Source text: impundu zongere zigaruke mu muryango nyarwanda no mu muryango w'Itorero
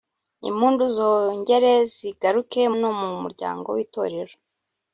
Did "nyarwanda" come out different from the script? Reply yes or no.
yes